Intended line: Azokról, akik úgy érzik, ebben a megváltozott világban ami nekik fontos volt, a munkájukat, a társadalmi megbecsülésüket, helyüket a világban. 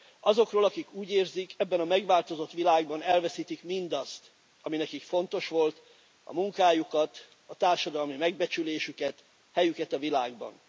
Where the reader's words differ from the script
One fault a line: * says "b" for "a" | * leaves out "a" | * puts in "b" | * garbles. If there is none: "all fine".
* puts in "elveszítik mindazt"